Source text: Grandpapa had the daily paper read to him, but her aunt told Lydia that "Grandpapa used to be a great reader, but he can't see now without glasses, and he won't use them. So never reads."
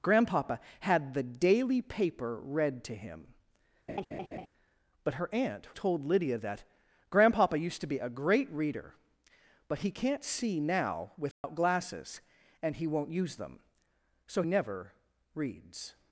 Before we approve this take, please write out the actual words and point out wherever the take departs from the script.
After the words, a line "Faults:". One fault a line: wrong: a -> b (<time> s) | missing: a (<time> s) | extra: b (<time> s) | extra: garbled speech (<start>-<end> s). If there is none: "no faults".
Grandpapa had the daily paper read to him, but her aunt told Lydia that "Grandpapa used to be a great reader, but he can't see now without glasses, and he won't use them. So never reads."
Faults:
no faults